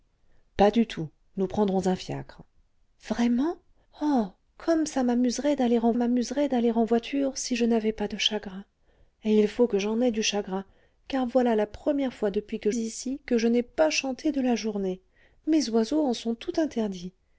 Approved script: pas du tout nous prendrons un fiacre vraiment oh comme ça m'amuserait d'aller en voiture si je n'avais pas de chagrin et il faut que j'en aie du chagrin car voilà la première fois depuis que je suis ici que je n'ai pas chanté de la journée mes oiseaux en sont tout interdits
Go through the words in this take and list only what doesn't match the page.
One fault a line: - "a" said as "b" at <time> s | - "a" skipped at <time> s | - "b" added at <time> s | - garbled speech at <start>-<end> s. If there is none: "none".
- "m'amuserait d'aller en" added at 6.0 s
- "je suis" skipped at 12.7 s